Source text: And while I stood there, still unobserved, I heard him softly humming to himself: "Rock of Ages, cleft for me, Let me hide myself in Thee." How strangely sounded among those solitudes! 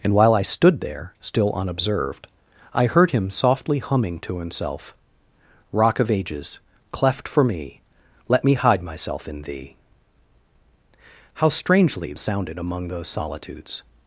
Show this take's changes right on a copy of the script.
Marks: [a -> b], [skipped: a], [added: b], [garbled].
And while I stood there, still unobserved, I heard him softly humming to himself: "Rock of Ages, cleft for me, Let me hide myself in Thee." How strangely sounded among those solitudes!